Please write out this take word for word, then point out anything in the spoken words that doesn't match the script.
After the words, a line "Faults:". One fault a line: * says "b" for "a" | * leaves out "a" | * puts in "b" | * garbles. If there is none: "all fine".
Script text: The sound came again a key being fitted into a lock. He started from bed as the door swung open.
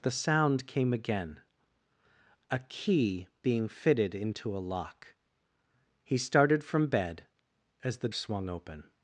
The sound came again a key being fitted into a lock. He started from bed as the swung open.
Faults:
* leaves out "door"